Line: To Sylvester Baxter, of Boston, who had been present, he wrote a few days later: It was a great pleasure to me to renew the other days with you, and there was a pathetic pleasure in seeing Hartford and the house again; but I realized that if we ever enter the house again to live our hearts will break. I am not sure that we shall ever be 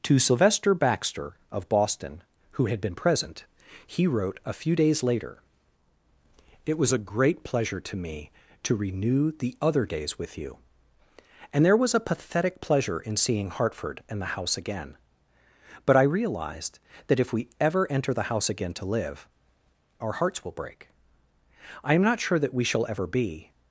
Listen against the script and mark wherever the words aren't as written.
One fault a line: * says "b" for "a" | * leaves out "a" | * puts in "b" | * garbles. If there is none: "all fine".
all fine